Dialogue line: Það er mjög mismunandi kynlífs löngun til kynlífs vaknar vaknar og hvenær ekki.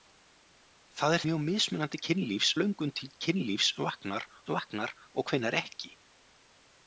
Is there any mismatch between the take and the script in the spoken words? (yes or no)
no